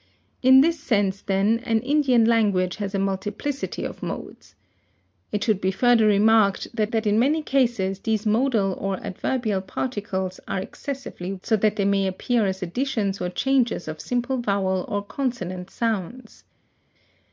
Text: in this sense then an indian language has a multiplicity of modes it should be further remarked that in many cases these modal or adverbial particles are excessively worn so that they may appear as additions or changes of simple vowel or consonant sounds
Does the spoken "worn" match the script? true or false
false